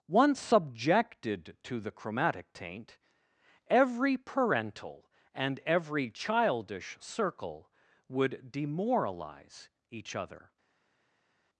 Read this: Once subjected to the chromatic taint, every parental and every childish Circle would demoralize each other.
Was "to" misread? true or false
false